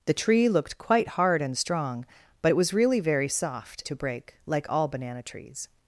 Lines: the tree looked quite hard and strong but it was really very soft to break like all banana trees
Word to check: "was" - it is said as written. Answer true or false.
true